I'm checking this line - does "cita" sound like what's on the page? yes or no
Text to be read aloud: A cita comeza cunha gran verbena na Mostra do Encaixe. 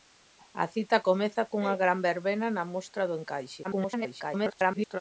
yes